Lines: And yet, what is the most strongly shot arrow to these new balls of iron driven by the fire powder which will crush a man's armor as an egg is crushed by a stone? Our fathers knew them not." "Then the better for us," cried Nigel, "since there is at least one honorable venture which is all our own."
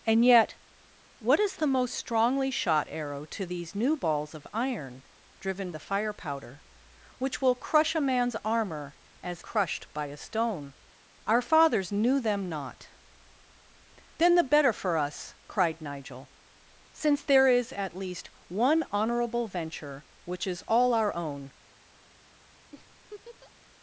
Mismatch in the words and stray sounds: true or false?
true